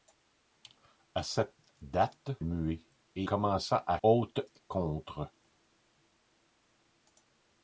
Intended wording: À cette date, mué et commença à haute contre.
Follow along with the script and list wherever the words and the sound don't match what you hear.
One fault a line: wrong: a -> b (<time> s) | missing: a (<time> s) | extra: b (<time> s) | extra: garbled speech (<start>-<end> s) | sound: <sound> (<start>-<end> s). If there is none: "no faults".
no faults